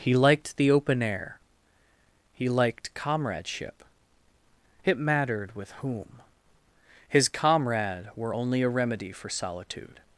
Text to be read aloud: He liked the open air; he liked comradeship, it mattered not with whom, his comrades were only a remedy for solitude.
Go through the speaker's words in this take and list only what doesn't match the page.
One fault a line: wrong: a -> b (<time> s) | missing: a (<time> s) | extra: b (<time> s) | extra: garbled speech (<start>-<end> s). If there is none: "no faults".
missing: not (5.5 s)
wrong: comrades -> comrade (7.3 s)